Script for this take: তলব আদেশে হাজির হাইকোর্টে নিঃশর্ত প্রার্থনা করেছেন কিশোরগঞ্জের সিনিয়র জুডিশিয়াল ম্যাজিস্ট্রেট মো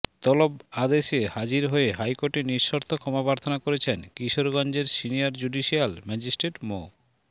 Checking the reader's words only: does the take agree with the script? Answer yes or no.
no